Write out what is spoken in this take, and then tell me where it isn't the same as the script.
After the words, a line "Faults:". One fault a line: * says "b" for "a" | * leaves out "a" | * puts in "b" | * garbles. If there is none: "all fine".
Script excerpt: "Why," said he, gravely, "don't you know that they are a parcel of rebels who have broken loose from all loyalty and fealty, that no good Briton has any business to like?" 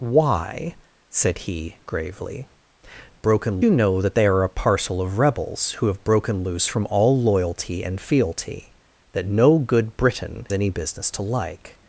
"Why," said he, gravely, "broken you know that they are a parcel of rebels who have broken loose from all loyalty and fealty, that no good Briton any business to like?"
Faults:
* says "broken" for "don't"
* leaves out "has"